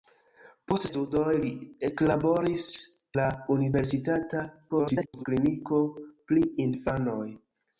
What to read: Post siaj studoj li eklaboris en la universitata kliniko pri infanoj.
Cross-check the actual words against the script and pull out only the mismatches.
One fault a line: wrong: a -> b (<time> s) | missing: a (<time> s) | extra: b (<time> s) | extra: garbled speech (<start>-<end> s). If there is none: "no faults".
missing: siaj (0.8 s)
missing: en (2.6 s)
extra: garbled speech (4.7-5.2 s)